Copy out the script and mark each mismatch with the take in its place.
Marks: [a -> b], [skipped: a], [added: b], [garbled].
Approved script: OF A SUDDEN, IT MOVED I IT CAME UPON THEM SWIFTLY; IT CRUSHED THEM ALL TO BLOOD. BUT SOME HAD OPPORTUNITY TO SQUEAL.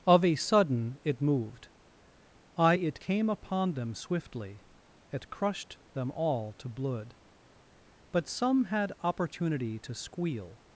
OF A SUDDEN, IT MOVED I IT CAME UPON THEM SWIFTLY; IT CRUSHED THEM ALL TO BLOOD. BUT SOME HAD OPPORTUNITY TO SQUEAL.